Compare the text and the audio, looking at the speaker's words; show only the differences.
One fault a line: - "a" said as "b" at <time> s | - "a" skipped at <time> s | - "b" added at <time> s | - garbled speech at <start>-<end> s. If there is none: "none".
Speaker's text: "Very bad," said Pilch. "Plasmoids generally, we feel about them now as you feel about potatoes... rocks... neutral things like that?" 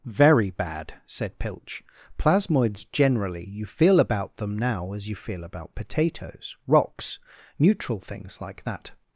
- "we" said as "you" at 3.5 s